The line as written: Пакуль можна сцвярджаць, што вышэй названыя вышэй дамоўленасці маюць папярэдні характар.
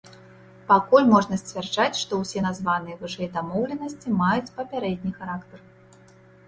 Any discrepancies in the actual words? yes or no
yes